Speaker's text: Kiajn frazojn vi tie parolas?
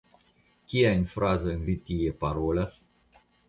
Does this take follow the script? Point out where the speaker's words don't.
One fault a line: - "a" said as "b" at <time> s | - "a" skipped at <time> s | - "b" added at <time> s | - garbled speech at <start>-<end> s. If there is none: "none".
none